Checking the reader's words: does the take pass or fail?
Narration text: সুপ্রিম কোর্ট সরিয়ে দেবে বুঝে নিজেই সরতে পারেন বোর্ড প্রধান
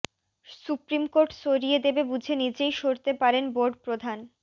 pass